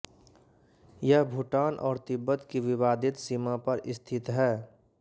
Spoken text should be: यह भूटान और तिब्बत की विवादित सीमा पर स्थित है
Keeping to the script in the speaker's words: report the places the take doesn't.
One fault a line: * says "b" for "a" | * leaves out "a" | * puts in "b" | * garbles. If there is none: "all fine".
all fine